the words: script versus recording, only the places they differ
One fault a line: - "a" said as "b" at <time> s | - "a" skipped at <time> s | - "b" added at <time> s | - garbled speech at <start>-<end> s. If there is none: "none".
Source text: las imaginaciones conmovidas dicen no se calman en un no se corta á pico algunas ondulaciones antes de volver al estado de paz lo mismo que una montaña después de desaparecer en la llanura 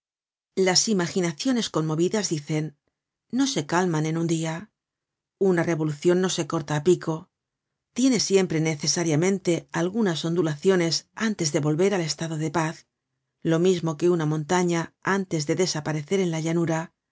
- "dia una revolucion" added at 4.3 s
- "tiene siempre necesariamente" added at 8.0 s
- "después" said as "antes" at 15.0 s